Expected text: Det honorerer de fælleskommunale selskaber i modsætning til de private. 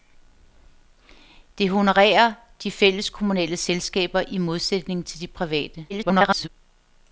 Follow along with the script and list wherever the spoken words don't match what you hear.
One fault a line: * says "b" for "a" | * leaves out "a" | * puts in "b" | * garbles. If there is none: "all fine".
* garbles